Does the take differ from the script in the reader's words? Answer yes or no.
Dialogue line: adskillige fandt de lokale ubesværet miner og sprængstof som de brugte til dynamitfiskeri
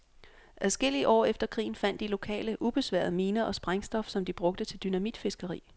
yes